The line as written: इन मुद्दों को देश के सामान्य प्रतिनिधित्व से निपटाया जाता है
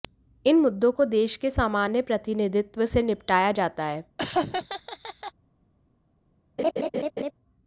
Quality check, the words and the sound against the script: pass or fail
fail